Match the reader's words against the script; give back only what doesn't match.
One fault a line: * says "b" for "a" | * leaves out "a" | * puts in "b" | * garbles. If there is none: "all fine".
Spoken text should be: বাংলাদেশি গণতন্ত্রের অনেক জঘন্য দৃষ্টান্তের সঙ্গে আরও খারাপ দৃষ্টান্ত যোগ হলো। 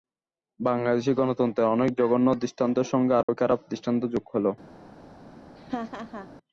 all fine